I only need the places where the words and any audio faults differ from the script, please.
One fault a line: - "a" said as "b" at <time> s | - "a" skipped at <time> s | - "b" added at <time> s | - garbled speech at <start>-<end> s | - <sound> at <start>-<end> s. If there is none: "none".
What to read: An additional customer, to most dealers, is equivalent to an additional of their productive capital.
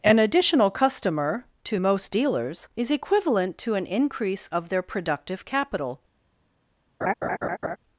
- "additional" said as "increase" at 3.8 s
- laugh at 7.0-7.8 s